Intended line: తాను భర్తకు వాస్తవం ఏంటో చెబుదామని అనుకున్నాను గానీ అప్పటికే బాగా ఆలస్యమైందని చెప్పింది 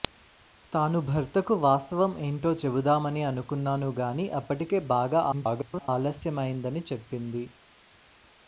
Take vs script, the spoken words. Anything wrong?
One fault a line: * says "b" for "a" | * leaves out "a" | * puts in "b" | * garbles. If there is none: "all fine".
* garbles